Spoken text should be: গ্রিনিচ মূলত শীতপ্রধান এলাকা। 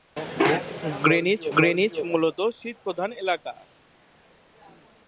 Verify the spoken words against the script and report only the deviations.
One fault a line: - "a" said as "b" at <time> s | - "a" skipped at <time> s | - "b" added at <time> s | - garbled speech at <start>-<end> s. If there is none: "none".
- "গ্রিনিচ" added at 1.6 s